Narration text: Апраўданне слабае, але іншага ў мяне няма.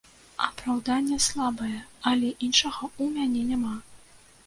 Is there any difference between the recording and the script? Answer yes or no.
no